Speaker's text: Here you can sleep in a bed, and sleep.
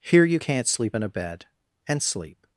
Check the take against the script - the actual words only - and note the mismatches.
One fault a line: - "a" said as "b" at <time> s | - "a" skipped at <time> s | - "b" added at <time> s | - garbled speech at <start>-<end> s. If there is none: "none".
- "can" said as "can't" at 0.4 s